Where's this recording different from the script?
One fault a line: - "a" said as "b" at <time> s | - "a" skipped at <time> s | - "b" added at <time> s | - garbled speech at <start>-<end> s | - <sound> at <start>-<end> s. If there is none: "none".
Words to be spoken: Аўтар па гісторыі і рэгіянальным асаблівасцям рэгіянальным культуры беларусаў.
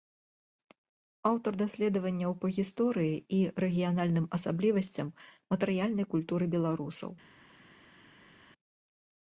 - "даследаванняў" added at 1.6 s
- "рэгіянальным" said as "матэрыяльнай" at 5.5 s